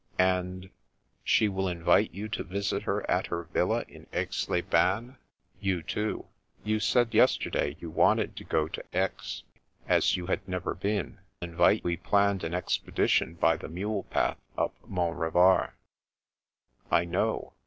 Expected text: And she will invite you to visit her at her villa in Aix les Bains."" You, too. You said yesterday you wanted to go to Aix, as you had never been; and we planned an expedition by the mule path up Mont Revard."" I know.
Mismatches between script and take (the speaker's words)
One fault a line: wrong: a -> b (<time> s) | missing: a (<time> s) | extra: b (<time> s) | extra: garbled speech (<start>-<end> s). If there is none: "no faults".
wrong: and -> invite (11.4 s)